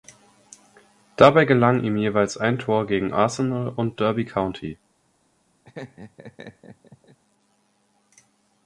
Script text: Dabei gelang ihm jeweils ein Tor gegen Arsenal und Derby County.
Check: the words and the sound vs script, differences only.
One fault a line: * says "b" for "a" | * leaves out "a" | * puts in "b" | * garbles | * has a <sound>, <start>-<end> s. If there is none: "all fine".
* has a laugh, 5.6-7.2 s